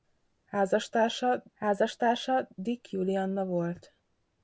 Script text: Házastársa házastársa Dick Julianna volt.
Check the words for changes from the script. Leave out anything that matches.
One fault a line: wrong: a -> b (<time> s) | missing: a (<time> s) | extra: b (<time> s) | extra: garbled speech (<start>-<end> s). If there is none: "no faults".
no faults